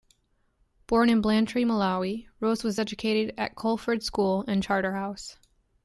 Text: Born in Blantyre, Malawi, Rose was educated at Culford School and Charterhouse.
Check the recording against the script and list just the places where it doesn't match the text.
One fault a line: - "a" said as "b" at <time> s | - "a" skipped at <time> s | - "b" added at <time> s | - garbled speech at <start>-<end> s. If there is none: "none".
none